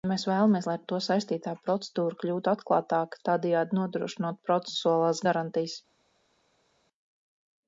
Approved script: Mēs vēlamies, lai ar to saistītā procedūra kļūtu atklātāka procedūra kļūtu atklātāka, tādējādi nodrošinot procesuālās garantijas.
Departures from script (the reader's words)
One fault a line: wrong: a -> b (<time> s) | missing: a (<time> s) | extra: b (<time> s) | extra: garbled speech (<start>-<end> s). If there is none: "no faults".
missing: procedūra kļūtu atklātāka (3.2 s)